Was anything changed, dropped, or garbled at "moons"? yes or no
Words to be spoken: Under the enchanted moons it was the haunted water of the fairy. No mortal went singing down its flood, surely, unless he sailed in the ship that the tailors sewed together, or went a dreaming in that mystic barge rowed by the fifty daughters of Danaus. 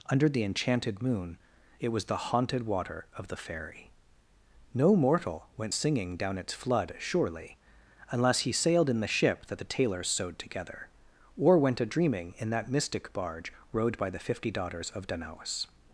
yes